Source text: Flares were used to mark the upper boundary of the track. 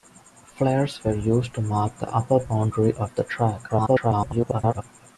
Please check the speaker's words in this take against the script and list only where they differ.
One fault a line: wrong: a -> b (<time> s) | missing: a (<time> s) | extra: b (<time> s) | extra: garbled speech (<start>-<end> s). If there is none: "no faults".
extra: garbled speech (3.7-4.8 s)